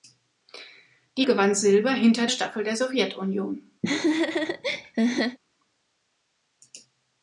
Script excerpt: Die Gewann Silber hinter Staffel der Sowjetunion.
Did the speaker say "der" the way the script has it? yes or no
yes